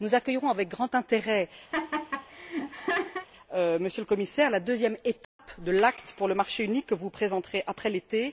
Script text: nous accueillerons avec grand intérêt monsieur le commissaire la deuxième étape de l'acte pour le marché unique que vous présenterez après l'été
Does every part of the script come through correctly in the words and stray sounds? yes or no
no